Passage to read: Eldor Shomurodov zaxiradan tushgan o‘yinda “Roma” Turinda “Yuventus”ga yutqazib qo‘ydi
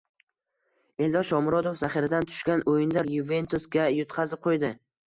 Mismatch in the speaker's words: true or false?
true